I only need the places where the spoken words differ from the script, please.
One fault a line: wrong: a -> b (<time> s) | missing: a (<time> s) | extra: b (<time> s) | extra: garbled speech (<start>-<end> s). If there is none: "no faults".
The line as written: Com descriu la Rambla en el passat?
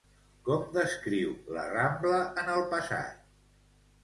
no faults